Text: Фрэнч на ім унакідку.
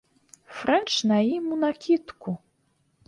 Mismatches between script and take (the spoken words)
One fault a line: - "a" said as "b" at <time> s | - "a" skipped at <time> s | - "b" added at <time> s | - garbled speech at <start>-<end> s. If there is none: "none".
none